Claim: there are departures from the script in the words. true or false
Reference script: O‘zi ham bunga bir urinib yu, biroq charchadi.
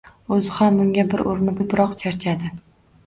false